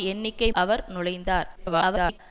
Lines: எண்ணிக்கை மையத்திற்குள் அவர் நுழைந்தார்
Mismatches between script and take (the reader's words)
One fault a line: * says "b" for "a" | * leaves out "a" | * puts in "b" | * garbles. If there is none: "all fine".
* leaves out "மையத்திற்குள்"
* garbles